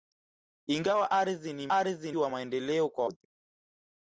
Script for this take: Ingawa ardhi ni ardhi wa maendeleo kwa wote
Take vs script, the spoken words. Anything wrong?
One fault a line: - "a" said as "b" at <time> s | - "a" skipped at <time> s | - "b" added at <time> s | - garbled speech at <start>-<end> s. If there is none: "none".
none